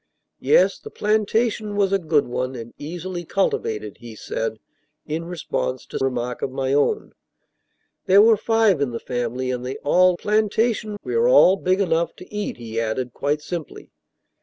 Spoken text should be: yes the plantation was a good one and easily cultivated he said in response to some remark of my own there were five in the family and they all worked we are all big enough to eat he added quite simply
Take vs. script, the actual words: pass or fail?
fail